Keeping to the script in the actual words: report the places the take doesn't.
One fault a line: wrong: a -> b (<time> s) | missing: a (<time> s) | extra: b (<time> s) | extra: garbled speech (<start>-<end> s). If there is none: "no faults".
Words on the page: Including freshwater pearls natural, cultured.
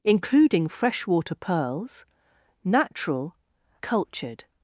no faults